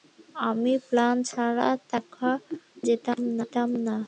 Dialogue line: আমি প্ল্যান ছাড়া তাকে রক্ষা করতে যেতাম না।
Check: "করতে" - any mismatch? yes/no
yes